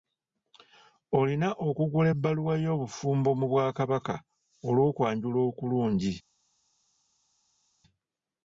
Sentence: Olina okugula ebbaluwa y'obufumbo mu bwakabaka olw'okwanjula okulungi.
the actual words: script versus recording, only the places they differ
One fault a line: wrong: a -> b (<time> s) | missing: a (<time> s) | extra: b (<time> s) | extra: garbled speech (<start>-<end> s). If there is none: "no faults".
no faults